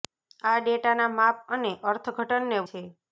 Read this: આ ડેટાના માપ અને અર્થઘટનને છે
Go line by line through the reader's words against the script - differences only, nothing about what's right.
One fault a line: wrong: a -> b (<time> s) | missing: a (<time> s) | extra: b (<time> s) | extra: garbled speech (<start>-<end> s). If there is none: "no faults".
no faults